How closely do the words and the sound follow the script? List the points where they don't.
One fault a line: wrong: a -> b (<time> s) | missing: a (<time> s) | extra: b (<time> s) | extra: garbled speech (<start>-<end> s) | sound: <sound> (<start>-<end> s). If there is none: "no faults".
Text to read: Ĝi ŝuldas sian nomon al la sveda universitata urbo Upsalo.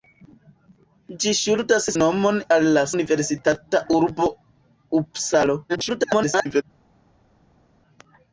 missing: sian (1.9 s)
missing: sveda (2.9 s)
extra: garbled speech (5.7-6.6 s)